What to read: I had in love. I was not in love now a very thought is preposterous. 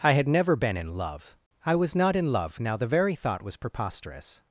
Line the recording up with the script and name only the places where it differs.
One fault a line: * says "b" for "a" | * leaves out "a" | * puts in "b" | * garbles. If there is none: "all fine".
* puts in "never been"
* says "the" for "a"
* says "was" for "is"